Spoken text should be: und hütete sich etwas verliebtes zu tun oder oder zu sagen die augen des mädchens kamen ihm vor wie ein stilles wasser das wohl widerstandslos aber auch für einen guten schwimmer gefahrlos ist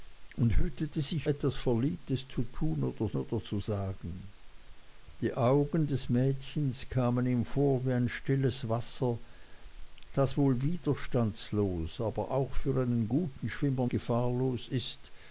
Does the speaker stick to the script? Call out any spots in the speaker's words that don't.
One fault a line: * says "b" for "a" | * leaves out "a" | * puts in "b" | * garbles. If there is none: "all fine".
all fine